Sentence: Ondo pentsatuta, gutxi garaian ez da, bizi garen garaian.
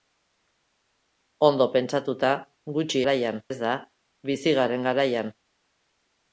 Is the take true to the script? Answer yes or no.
yes